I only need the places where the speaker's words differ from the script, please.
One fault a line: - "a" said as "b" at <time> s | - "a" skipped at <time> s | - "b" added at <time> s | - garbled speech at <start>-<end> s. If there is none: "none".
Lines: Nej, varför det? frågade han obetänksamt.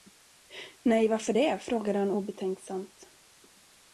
none